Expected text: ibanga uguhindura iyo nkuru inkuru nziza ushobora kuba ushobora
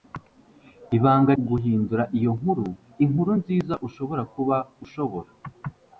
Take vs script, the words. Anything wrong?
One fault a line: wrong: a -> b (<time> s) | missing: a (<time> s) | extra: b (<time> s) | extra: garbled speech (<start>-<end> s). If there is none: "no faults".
no faults